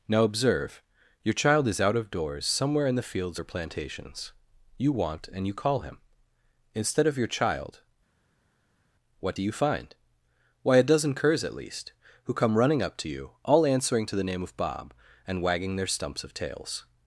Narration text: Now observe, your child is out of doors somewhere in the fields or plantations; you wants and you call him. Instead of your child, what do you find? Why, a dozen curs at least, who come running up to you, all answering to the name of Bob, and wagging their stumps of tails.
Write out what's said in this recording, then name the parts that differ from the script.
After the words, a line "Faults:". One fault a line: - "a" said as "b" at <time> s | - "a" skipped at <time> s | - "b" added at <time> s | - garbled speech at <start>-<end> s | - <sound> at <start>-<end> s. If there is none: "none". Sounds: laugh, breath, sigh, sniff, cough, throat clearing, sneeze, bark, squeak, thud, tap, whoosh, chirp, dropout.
Now observe, your child is out of doors somewhere in the fields or plantations; you want and you call him. Instead of your child, what do you find? Why, a dozen curs at least, who come running up to you, all answering to the name of Bob, and wagging their stumps of tails.
Faults:
- "wants" said as "want" at 4.9 s